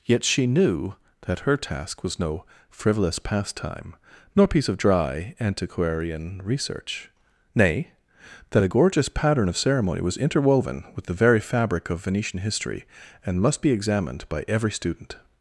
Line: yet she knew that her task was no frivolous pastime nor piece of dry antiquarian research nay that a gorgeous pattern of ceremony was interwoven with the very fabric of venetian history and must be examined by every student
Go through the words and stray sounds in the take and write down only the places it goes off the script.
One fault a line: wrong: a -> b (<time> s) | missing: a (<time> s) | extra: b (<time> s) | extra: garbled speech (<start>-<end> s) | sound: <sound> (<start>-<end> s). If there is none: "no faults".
no faults